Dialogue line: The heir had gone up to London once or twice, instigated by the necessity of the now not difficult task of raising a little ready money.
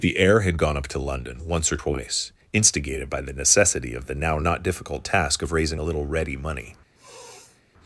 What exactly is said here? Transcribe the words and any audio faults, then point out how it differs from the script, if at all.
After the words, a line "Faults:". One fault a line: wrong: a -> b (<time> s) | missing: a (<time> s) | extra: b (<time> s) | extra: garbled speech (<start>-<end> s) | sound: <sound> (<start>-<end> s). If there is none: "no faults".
The heir had gone up to London once or twice, instigated by the necessity of the now not difficult task of raising a little ready money.
Faults:
sound: sniff (7.0-7.6 s)